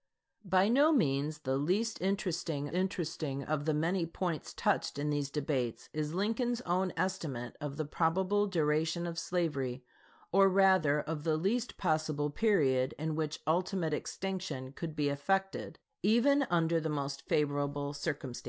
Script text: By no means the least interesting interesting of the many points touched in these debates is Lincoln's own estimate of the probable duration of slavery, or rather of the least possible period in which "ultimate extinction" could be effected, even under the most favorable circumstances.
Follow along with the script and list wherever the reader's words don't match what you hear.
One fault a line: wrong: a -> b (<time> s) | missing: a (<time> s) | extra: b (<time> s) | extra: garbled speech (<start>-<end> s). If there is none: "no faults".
no faults